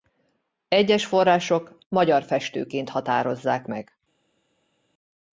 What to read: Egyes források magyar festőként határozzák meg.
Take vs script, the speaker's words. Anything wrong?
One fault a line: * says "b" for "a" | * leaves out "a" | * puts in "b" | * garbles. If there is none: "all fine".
all fine